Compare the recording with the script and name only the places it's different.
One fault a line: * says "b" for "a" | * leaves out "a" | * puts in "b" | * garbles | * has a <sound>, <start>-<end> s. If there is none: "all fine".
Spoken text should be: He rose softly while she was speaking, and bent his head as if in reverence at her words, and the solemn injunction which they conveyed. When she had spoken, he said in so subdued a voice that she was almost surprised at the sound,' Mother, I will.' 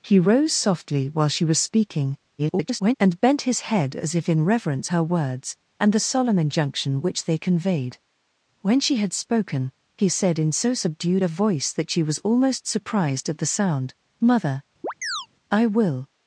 * garbles
* leaves out "at"
* has a chirp, 14.8-15.3 s